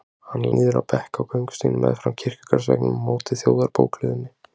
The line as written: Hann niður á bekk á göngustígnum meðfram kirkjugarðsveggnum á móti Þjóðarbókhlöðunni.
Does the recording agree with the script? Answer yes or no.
yes